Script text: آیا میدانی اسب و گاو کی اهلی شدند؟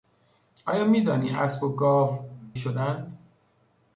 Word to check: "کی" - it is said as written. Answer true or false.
false